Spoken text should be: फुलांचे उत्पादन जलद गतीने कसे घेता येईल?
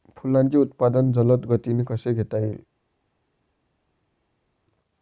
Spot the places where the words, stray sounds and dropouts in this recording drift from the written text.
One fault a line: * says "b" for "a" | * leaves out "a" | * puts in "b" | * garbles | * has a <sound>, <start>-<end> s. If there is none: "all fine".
all fine